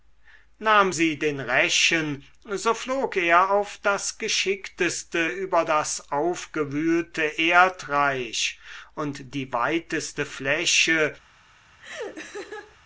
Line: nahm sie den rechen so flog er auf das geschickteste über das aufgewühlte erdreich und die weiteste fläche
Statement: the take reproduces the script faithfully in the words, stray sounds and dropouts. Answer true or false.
false